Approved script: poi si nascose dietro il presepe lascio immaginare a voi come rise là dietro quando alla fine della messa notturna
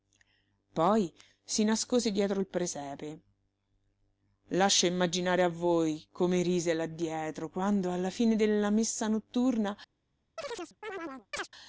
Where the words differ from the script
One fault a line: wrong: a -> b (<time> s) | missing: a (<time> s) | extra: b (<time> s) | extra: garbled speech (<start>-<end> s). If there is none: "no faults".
no faults